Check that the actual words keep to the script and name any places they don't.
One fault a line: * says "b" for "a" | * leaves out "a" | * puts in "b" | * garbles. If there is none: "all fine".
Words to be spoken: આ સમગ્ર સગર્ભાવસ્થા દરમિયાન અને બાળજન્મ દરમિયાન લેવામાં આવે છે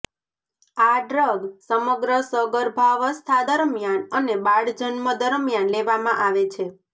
* puts in "ડ્રગ"